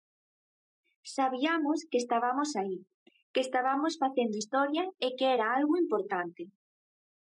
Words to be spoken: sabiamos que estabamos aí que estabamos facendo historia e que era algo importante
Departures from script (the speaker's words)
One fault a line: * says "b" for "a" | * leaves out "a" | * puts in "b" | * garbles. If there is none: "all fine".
all fine